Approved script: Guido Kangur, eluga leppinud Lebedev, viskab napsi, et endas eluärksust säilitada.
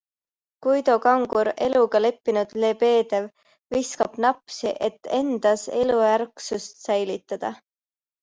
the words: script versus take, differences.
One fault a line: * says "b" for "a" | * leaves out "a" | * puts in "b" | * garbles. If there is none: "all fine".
all fine